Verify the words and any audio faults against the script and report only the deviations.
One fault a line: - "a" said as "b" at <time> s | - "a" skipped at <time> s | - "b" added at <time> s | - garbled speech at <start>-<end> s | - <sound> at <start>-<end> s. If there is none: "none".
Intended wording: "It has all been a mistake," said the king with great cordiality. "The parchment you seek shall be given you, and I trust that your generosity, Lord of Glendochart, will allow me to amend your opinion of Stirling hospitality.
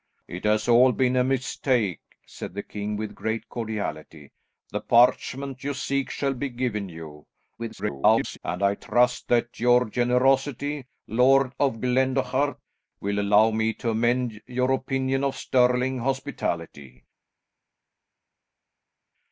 - garbled speech at 7.6-8.4 s